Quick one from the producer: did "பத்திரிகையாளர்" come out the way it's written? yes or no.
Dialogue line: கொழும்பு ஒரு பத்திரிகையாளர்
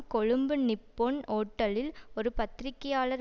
yes